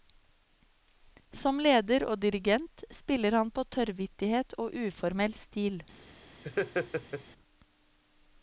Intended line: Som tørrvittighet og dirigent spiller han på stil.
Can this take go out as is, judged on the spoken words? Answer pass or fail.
fail